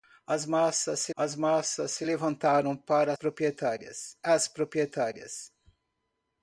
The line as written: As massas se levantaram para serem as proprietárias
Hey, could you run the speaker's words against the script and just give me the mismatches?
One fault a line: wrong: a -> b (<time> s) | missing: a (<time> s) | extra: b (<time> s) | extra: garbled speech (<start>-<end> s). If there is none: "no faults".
extra: as massas se (1.1 s)
wrong: serem -> proprietárias (3.1 s)